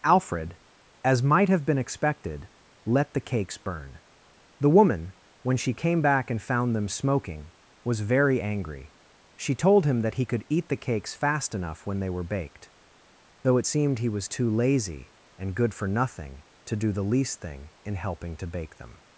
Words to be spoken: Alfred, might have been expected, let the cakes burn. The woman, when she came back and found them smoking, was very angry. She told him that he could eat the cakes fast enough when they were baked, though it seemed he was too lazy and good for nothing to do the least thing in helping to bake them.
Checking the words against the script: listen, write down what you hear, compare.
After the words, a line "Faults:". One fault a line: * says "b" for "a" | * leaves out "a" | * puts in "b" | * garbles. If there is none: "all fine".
Alfred, as might have been expected, let the cakes burn. The woman, when she came back and found them smoking, was very angry. She told him that he could eat the cakes fast enough when they were baked, though it seemed he was too lazy and good for nothing to do the least thing in helping to bake them.
Faults:
* puts in "as"